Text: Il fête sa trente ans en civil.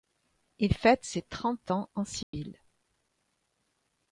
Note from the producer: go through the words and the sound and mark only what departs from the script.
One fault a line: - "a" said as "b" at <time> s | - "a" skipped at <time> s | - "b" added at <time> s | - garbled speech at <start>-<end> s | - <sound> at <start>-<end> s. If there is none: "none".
- "sa" said as "ses" at 1.0 s
- dropout at 2.2-2.3 s